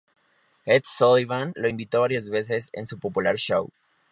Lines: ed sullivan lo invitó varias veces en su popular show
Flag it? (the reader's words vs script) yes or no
no